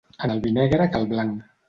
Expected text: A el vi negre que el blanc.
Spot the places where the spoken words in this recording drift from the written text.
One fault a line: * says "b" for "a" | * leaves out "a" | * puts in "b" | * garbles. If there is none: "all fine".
all fine